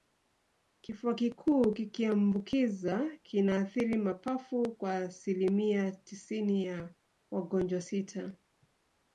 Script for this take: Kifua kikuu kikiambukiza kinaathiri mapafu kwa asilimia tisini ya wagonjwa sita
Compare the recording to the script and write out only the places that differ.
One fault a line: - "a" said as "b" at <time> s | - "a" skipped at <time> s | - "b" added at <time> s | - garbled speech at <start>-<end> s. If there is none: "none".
none